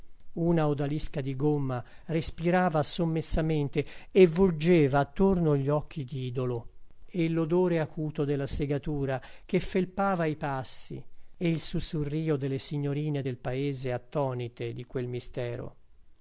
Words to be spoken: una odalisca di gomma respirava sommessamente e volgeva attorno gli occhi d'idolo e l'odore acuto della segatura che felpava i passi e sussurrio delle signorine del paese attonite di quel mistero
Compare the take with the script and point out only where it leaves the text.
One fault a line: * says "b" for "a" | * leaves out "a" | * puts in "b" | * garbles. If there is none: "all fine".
* puts in "il"